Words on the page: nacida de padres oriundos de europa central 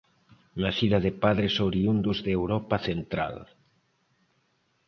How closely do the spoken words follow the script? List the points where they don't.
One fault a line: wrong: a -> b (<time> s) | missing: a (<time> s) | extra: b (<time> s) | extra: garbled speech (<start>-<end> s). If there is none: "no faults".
no faults